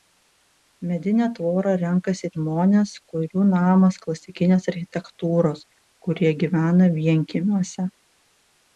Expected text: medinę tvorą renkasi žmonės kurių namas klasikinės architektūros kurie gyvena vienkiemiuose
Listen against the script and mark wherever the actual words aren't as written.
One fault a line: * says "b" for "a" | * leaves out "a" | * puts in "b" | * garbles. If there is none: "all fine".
all fine